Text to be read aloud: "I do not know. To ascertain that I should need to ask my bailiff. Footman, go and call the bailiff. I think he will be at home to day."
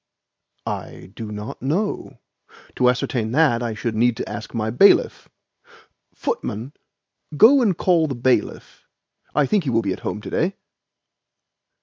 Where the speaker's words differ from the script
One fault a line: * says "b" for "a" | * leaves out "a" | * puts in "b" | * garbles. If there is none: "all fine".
all fine